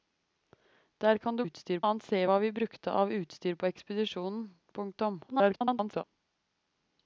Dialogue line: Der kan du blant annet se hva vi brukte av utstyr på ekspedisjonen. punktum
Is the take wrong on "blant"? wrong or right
wrong